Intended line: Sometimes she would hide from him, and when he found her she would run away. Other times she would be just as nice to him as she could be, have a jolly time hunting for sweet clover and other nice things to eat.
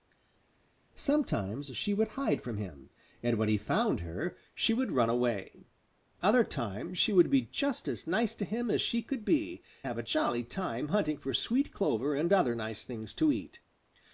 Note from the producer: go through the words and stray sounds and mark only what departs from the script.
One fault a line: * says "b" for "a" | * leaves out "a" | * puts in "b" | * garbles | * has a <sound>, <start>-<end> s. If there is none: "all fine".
all fine